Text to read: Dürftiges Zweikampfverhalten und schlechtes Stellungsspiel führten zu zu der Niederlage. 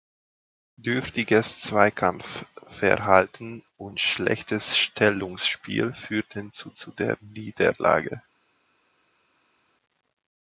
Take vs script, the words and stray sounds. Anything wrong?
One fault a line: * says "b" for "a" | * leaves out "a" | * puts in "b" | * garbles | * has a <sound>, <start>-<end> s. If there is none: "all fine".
all fine